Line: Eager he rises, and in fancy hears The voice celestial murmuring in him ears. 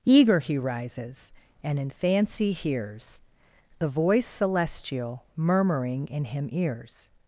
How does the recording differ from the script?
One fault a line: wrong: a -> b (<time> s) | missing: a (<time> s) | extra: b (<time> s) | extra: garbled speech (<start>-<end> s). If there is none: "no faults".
no faults